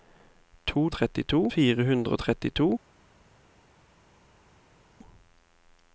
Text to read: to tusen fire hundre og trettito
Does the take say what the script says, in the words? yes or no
no